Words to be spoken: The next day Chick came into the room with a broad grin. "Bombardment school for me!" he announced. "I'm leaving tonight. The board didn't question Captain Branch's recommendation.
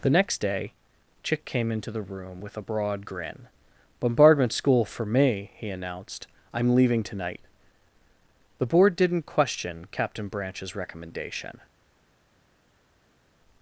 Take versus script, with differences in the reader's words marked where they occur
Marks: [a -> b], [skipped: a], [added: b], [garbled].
The next day Chick came into the room with a broad grin. "Bombardment school for me!" he announced. "I'm leaving tonight. The board didn't question Captain Branch's recommendation.